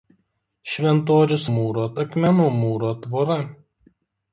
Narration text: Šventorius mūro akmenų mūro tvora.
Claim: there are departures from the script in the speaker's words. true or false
false